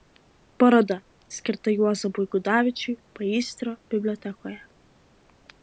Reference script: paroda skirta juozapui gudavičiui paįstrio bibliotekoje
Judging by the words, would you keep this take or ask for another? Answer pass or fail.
pass